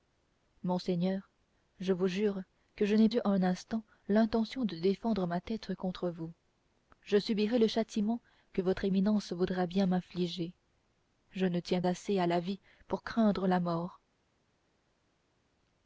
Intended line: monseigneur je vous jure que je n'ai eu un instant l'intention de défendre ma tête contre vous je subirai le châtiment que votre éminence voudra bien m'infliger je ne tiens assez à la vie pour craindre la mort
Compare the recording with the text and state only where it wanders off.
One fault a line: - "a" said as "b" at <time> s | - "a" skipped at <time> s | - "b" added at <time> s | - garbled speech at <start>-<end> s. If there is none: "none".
none